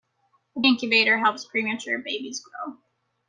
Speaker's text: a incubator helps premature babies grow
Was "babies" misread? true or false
false